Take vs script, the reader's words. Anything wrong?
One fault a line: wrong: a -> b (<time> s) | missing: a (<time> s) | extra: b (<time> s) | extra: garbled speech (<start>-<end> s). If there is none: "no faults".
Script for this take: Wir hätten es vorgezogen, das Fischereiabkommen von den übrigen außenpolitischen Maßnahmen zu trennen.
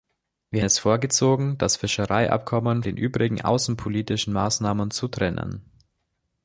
missing: hätten (0.6 s)
missing: von (2.8 s)